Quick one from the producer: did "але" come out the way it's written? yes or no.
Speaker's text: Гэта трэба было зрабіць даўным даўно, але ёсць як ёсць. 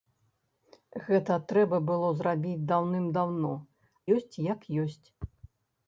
no